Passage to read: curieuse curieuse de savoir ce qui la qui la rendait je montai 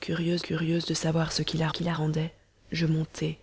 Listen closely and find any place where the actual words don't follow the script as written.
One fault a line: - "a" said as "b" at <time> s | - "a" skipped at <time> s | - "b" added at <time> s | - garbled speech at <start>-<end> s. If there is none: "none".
none